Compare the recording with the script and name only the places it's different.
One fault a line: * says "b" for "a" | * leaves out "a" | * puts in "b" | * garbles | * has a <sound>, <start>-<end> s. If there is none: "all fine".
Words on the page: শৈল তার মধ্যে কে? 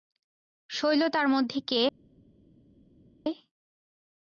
all fine